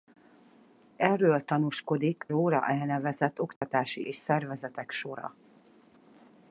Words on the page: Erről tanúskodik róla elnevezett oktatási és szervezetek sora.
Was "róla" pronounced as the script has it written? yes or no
yes